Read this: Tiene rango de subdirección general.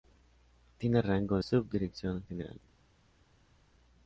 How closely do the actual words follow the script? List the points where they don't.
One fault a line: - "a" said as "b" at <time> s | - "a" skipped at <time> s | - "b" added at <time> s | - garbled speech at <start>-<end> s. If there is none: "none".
- "de" skipped at 1.4 s